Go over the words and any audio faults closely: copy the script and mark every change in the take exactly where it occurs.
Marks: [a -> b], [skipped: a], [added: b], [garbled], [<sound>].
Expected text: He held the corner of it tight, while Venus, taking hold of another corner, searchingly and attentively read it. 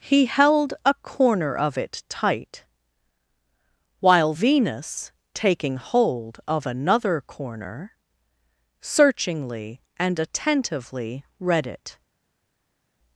He held [the -> a] corner of it tight, while Venus, taking hold of another corner, searchingly and attentively read it.